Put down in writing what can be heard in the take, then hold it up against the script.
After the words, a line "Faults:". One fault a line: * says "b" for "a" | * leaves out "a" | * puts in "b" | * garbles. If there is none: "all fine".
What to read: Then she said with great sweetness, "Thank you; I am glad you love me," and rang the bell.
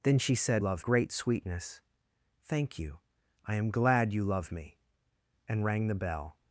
Then she said love great sweetness, "Thank you; I am glad you love me," and rang the bell.
Faults:
* says "love" for "with"